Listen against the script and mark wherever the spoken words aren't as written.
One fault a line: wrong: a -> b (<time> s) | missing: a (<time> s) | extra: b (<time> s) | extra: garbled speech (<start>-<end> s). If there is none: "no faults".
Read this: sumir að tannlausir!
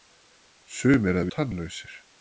no faults